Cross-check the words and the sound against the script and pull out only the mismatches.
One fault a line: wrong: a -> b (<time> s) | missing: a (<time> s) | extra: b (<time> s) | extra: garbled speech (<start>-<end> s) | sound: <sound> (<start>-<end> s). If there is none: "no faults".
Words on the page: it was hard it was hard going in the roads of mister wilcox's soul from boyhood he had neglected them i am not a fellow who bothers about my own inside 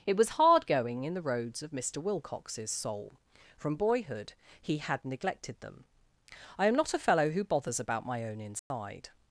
missing: it was hard (0.7 s)
sound: dropout (8.6-8.7 s)